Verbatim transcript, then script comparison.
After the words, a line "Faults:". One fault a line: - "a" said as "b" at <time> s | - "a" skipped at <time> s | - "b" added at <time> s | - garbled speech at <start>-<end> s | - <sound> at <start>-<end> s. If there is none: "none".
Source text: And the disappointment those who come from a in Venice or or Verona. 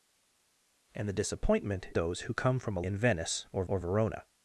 And the disappointment those who come from a in Venice or or Verona.
Faults:
none